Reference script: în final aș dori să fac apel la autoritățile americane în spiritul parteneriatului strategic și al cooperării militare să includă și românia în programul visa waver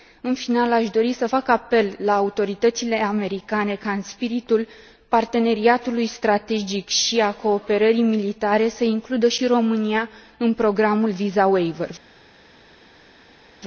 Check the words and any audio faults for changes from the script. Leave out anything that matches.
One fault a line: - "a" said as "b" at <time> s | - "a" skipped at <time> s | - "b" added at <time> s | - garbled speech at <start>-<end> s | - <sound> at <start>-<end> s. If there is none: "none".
- "ca" added at 3.8 s